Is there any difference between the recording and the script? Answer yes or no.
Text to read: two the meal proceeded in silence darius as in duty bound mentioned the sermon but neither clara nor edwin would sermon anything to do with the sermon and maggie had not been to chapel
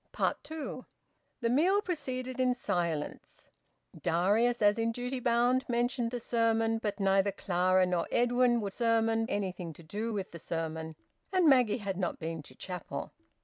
no